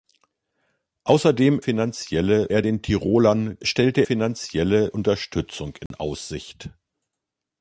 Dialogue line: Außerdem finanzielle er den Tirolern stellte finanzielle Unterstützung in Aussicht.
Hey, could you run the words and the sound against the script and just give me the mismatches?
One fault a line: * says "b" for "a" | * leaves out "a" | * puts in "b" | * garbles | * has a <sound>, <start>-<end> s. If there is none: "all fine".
* has a dropout, 5.9-5.9 s